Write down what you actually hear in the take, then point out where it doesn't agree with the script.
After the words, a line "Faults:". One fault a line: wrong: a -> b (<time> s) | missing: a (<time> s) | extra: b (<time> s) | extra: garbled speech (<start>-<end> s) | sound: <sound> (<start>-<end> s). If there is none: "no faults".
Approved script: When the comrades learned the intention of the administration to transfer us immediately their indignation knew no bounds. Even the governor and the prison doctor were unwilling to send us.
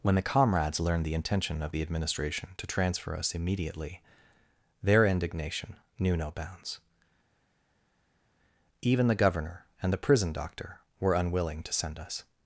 When the comrades learned the intention of the administration to transfer us immediately their indignation knew no bounds. Even the governor and the prison doctor were unwilling to send us.
Faults:
no faults